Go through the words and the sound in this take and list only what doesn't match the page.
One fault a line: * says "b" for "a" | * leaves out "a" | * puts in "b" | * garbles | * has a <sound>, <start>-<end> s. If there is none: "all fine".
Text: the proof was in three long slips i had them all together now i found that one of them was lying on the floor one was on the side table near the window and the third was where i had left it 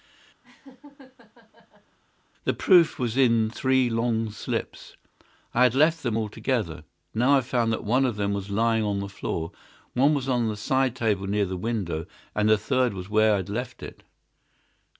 * has a laugh, 0.4-2.0 s
* puts in "left"